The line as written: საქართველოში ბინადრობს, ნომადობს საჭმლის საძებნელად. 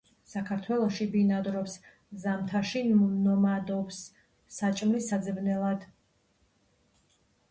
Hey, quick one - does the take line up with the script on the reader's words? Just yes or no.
no